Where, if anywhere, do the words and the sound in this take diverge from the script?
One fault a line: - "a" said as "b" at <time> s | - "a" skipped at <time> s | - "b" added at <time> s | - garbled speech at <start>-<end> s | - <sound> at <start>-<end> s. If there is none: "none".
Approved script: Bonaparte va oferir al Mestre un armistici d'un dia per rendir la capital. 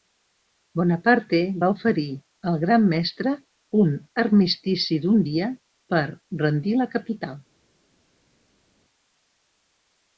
- "Gran" added at 2.6 s